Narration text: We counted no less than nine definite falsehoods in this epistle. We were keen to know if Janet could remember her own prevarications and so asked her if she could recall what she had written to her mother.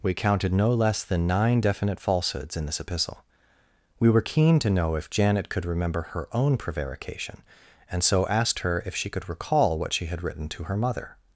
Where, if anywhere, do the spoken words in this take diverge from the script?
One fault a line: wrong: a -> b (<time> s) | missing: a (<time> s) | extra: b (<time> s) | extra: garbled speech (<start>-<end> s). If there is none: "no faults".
wrong: prevarications -> prevarication (6.6 s)